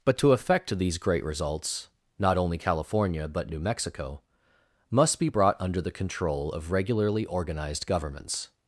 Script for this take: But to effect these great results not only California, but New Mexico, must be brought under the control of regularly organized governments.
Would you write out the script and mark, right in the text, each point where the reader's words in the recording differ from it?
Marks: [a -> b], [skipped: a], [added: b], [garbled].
But to effect these great results not only California, but New Mexico, must be brought under the control of regularly organized governments.